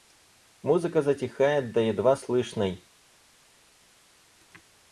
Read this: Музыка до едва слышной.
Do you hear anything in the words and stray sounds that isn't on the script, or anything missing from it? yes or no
yes